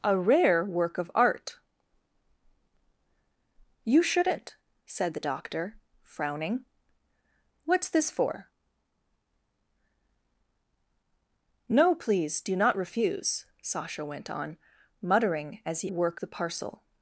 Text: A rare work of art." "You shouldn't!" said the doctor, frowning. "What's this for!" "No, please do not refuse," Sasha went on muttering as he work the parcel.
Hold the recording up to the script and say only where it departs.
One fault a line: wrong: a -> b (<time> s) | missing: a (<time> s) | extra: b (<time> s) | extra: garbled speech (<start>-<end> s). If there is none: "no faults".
no faults